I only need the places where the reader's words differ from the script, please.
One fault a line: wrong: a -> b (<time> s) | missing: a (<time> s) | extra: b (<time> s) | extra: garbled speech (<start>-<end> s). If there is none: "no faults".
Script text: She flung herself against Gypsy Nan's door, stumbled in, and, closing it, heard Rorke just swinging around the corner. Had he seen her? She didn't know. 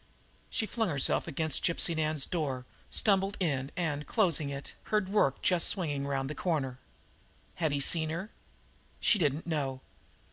no faults